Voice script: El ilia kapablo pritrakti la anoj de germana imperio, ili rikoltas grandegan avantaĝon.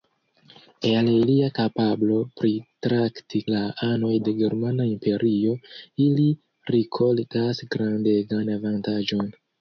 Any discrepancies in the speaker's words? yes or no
no